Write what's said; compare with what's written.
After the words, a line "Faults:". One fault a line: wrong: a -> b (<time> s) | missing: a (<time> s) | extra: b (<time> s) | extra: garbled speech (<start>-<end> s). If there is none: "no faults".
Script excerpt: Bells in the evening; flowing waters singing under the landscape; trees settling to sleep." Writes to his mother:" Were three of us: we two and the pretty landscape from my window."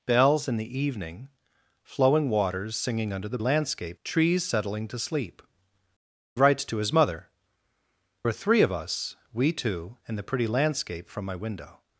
Bells in the evening; flowing waters singing under the landscape; trees settling to sleep." Writes to his mother:" Were three of us: we two and the pretty landscape from my window."
Faults:
no faults